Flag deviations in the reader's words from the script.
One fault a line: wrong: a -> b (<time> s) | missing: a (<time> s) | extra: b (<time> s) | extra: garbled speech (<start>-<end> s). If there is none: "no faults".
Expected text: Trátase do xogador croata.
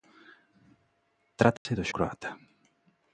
missing: xogador (1.9 s)